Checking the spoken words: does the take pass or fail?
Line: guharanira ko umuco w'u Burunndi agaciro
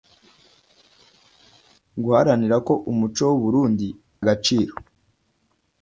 pass